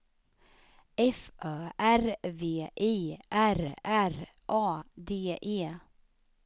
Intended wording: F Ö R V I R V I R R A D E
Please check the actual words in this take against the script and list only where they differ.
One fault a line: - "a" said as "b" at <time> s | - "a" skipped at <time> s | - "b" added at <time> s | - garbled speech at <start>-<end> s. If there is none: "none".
- "V I R" skipped at 3.7 s